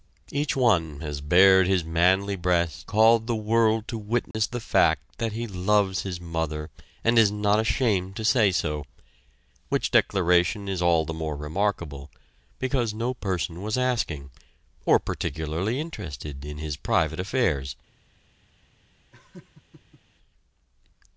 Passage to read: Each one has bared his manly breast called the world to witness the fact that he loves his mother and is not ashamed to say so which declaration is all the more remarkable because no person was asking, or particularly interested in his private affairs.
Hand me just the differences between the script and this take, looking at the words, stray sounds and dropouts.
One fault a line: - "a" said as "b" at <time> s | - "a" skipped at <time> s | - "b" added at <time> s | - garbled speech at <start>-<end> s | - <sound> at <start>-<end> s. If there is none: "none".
- dropout at 4.3-4.3 s
- laugh at 19.1-20.0 s